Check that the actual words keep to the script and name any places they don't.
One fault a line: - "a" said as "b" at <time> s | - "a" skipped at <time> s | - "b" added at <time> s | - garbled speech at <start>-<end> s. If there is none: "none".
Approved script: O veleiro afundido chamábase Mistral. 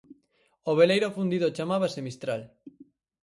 none